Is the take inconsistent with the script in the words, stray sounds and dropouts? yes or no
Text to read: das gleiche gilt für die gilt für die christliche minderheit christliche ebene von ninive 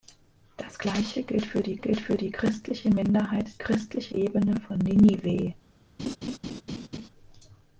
yes